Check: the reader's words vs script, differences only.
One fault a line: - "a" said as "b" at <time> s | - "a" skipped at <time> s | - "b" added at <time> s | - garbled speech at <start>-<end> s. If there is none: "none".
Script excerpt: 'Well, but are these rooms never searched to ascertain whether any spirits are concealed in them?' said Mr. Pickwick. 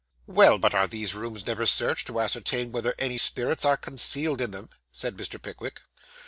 none